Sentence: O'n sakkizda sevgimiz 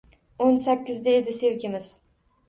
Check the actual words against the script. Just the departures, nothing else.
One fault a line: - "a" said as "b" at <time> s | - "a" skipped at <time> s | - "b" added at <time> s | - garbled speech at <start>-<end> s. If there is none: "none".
- "edi" added at 1.2 s